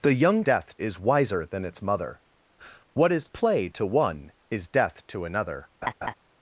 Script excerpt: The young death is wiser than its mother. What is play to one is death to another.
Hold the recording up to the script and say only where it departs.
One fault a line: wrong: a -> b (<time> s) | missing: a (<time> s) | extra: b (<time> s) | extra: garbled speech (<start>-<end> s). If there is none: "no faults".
no faults